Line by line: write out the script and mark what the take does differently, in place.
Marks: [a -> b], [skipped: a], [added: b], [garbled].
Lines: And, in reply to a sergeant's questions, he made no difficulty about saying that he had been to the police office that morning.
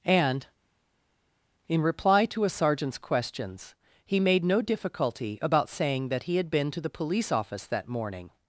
And, in reply to a sergeant's questions, he made no difficulty about saying that he had been to the police office that morning.